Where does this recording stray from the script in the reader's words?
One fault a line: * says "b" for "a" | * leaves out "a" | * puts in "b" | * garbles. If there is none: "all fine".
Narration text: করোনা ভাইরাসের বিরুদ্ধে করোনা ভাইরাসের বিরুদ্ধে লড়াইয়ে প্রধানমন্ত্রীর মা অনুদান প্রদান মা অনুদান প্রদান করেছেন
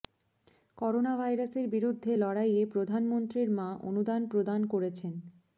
* leaves out "করোনা ভাইরাসের বিরুদ্ধে"
* leaves out "মা অনুদান প্রদান"